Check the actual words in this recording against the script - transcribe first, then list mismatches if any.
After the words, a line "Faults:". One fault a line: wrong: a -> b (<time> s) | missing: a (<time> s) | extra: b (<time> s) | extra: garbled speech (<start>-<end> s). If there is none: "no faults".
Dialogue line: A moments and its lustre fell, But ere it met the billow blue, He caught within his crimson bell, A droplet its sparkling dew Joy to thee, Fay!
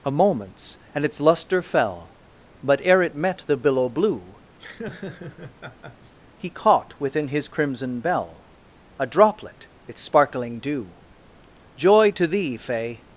A moments and its lustre fell, But ere it met the billow blue, He caught within his crimson bell, A droplet its sparkling dew Joy to thee, Fay!
Faults:
no faults